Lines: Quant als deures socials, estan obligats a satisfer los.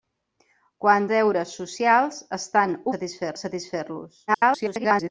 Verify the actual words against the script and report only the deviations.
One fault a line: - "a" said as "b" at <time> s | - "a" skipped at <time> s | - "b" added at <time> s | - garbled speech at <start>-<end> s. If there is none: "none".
- "als" skipped at 1.1 s
- "obligats" said as "satisfer" at 2.9 s
- garbled speech at 4.3-5.1 s